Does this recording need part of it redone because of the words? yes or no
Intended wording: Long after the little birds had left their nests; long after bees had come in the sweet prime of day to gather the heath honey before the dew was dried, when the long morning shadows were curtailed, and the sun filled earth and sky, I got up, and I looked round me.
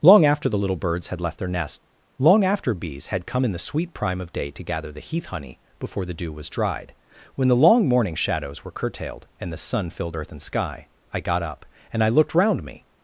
yes